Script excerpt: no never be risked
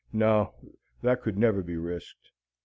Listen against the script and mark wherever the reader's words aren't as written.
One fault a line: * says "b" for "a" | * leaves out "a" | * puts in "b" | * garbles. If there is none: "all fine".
* puts in "that could"